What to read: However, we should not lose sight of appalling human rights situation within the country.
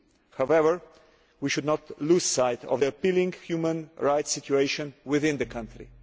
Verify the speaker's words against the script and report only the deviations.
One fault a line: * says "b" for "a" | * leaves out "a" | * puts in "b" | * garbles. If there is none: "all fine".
* puts in "the"